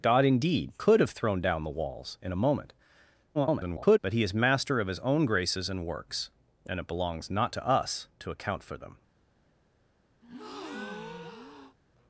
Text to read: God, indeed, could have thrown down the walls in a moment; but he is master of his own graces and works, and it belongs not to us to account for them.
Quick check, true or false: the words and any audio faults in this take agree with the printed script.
false